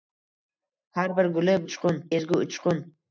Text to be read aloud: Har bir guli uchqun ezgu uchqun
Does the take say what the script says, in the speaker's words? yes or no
yes